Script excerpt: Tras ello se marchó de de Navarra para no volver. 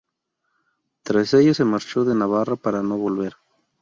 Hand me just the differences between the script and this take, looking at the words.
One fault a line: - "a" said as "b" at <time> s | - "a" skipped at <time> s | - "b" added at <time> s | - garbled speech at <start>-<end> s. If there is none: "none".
- "de" skipped at 2.1 s